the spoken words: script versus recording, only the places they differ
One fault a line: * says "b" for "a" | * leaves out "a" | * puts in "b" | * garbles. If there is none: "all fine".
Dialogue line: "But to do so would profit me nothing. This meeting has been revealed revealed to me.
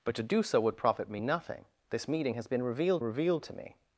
all fine